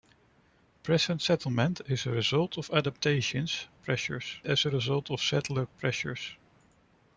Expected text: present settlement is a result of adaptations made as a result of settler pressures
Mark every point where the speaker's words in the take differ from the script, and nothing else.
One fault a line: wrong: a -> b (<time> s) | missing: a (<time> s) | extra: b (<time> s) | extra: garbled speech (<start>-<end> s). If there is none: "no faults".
wrong: made -> pressures (3.7 s)